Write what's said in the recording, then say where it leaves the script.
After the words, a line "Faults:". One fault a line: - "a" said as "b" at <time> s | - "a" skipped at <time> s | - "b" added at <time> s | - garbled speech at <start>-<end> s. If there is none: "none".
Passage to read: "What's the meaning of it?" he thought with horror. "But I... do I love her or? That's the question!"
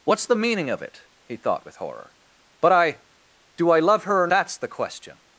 "What's the meaning of it?" he thought with horror. "But I... do I love her or? That's the question!"
Faults:
none